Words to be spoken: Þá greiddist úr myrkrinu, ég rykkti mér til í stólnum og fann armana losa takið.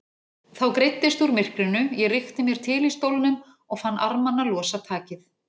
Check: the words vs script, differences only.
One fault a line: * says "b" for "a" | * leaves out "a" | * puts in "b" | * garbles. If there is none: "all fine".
all fine